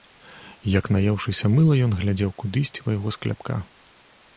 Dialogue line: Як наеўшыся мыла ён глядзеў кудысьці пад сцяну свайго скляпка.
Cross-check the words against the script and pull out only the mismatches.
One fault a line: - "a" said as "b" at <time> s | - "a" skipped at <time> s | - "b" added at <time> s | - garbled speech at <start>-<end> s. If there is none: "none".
- "пад сцяну" skipped at 2.9 s